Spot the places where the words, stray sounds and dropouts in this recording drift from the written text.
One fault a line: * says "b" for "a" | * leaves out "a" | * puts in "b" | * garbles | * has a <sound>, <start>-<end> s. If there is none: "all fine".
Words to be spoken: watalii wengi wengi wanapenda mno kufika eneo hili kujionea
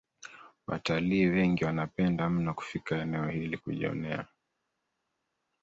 * leaves out "wengi"